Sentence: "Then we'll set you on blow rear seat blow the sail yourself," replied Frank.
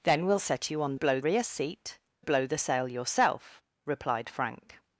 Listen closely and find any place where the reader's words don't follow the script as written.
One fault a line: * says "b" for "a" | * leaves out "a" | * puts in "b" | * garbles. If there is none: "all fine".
all fine